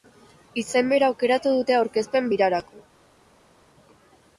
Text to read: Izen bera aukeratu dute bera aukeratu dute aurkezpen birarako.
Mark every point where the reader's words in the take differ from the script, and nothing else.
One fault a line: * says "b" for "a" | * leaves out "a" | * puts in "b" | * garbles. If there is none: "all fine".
* leaves out "bera aukeratu dute"